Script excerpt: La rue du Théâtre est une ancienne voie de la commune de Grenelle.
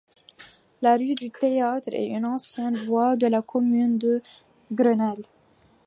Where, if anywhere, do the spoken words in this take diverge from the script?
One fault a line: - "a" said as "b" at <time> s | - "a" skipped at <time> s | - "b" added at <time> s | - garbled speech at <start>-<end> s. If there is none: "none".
none